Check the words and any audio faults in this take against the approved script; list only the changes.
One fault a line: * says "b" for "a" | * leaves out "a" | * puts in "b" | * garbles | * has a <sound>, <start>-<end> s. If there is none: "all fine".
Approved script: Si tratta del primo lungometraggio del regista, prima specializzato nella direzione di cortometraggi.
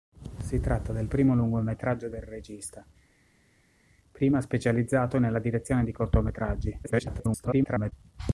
* garbles